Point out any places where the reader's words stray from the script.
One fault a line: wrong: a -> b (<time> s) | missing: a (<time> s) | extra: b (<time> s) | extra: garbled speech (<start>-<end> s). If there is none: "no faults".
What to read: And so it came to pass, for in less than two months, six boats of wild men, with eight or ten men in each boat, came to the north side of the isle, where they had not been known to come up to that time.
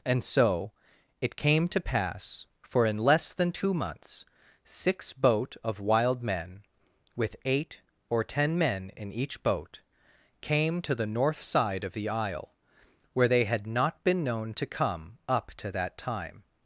wrong: boats -> boat (5.1 s)